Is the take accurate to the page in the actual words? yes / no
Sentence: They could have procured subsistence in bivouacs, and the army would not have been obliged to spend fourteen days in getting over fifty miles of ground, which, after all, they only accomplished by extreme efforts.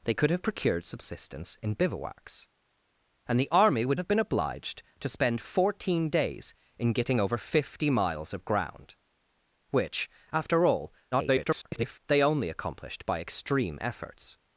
no